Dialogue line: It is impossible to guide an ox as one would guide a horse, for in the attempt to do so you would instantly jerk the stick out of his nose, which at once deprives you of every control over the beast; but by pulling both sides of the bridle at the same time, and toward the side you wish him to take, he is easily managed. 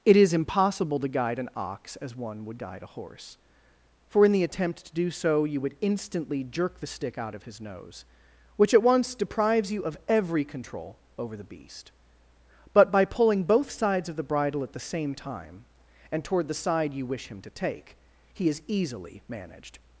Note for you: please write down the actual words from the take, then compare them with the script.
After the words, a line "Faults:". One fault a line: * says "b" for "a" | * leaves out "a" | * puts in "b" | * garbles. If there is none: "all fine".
It is impossible to guide an ox as one would guide a horse, for in the attempt to do so you would instantly jerk the stick out of his nose, which at once deprives you of every control over the beast; but by pulling both sides of the bridle at the same time, and toward the side you wish him to take, he is easily managed.
Faults:
all fine